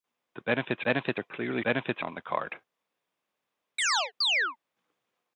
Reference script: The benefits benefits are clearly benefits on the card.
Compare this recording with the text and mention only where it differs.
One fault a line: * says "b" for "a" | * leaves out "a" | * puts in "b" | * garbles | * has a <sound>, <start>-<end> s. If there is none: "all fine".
* has a chirp, 3.8-4.6 s